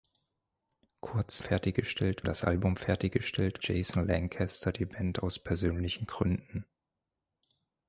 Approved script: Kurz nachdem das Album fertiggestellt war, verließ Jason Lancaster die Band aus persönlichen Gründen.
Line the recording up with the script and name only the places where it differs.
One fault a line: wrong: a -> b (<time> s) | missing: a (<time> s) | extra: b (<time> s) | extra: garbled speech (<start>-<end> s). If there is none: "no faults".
wrong: nachdem -> fertiggestellt (1.4 s)
missing: war verließ (3.6 s)